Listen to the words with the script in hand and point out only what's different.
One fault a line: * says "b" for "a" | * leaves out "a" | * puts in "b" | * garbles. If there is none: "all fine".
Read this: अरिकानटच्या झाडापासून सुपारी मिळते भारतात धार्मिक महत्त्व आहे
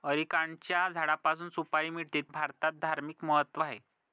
all fine